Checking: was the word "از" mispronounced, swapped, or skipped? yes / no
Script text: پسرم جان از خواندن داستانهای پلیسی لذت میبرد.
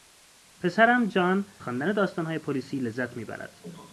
yes